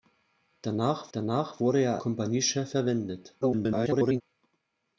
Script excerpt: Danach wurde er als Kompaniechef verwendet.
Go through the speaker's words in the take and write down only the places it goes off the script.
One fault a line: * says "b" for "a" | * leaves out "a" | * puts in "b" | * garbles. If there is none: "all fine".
* puts in "danach"
* leaves out "als"
* garbles